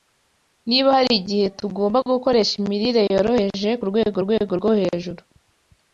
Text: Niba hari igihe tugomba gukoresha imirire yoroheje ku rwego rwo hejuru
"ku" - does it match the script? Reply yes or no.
yes